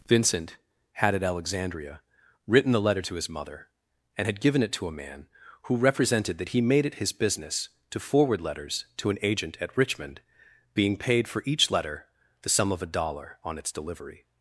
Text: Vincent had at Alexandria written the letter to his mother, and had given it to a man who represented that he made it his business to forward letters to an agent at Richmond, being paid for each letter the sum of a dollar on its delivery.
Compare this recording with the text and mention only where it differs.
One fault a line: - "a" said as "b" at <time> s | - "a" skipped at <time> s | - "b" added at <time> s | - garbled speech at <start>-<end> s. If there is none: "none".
none